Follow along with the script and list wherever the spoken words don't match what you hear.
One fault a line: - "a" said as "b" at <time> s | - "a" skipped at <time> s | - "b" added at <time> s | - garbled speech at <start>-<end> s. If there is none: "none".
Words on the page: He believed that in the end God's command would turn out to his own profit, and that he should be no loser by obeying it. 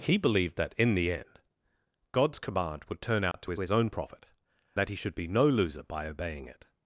- "his" added at 3.6 s
- "and" skipped at 4.3 s